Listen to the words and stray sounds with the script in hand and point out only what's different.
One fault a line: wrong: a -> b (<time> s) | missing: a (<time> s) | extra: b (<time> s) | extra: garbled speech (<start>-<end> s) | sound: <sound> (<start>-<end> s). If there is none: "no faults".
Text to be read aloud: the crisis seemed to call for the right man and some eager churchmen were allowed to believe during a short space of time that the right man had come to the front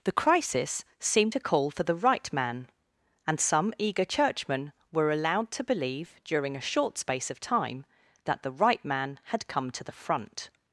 no faults